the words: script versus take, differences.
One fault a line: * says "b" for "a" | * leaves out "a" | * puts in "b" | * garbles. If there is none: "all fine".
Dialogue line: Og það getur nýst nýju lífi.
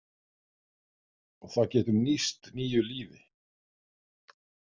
all fine